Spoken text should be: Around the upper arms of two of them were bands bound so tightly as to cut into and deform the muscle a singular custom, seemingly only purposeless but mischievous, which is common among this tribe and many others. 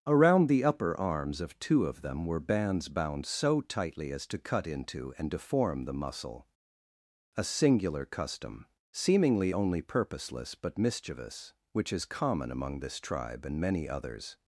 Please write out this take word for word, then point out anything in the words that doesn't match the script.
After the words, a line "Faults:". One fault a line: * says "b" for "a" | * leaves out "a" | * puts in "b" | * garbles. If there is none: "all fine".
Around the upper arms of two of them were bands bound so tightly as to cut into and deform the muscle a singular custom, seemingly only purposeless but mischievous, which is common among this tribe and many others.
Faults:
all fine